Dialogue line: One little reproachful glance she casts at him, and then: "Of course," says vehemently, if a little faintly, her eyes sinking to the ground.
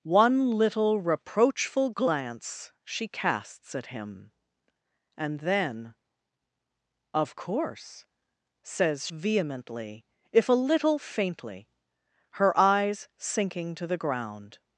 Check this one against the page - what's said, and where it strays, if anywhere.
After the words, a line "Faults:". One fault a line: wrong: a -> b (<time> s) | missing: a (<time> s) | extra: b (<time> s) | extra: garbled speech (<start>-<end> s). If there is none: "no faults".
One little reproachful glance she casts at him, and then: "Of course," says vehemently, if a little faintly, her eyes sinking to the ground.
Faults:
no faults